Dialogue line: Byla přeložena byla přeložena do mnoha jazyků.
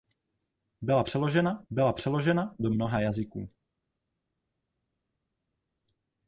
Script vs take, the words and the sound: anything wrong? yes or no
no